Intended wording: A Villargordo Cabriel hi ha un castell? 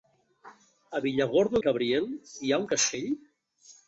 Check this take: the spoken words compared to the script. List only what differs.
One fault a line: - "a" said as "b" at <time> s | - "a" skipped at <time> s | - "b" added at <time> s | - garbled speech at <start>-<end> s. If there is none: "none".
none